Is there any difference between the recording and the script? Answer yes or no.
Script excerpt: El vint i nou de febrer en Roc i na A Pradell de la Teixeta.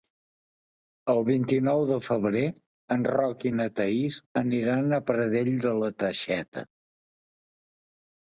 yes